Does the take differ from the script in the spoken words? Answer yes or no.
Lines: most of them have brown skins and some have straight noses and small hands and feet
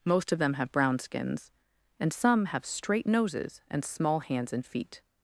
no